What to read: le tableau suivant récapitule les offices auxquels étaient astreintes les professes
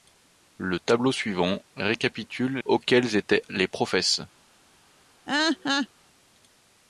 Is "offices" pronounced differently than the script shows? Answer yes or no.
yes